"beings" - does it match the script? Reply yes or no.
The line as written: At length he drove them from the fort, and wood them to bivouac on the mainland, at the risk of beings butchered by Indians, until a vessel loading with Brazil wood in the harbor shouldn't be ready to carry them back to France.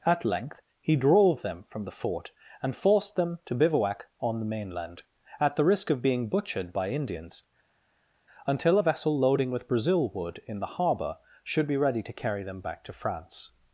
no